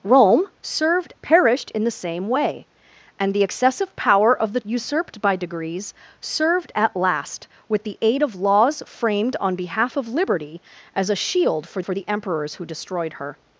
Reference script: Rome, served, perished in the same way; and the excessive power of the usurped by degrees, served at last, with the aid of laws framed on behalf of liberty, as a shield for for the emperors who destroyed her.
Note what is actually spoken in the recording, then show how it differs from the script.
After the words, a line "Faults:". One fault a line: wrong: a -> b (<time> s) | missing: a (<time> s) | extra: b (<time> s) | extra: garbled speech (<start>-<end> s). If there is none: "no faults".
Rome, served, perished in the same way; and the excessive power of the usurped by degrees, served at last, with the aid of laws framed on behalf of liberty, as a shield for for the emperors who destroyed her.
Faults:
no faults